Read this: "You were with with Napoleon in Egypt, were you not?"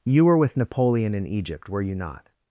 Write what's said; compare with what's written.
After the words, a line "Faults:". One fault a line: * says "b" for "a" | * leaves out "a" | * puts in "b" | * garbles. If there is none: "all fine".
"You were with Napoleon in Egypt, were you not?"
Faults:
* leaves out "with"